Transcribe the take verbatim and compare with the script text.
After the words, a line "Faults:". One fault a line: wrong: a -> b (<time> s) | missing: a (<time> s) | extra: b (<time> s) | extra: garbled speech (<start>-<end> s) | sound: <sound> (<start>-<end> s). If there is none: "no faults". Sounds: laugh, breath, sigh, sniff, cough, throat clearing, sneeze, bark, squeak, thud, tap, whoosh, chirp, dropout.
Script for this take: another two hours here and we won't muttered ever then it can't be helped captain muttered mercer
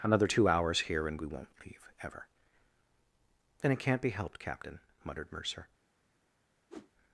another two hours here and we won't leave ever then it can't be helped captain muttered mercer
Faults:
wrong: muttered -> leave (1.7 s)
sound: whoosh (6.7-6.9 s)